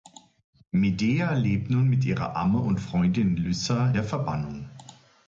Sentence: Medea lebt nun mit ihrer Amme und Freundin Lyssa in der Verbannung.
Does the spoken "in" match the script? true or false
false